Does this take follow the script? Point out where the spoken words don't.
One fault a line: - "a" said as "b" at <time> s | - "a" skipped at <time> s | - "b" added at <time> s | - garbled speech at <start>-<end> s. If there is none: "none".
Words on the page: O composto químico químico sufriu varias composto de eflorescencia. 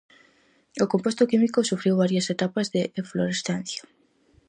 - "químico" skipped at 1.7 s
- "composto" said as "etapas" at 2.3 s